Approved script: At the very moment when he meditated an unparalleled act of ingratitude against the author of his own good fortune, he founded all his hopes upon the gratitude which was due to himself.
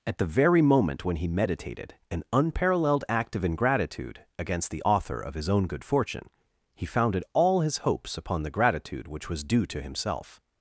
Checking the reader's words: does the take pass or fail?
pass